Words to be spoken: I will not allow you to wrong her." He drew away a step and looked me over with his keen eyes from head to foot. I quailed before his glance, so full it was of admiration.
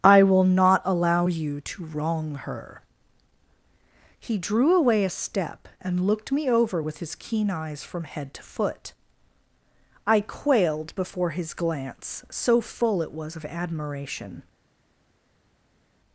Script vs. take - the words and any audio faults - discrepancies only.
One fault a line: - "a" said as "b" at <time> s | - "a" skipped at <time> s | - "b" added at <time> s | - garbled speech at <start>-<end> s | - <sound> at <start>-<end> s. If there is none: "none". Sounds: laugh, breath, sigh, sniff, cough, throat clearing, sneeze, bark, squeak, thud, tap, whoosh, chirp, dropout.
none